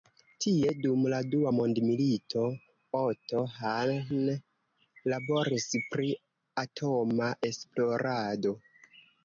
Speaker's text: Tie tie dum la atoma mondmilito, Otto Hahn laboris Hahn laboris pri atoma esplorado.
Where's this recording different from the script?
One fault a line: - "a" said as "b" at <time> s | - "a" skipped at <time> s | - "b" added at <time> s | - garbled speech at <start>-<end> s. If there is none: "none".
- "tie" skipped at 0.7 s
- "atoma" said as "dua" at 1.3 s
- "Hahn laboris" skipped at 5.7 s